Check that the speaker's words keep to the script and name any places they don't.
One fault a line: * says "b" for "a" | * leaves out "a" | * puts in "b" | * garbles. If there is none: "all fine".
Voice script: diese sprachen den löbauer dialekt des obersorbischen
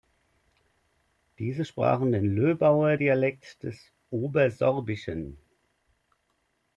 all fine